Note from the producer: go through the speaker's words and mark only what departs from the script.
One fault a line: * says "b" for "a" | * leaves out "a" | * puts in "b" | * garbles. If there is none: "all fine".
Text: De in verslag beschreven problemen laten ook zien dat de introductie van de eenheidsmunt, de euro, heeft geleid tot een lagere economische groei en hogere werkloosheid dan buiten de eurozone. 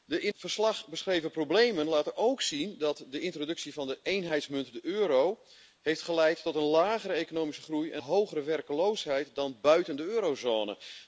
all fine